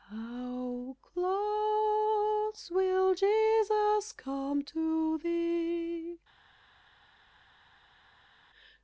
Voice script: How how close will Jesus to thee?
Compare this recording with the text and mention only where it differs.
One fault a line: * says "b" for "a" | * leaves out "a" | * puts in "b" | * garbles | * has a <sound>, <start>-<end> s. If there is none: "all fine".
* leaves out "how"
* puts in "come"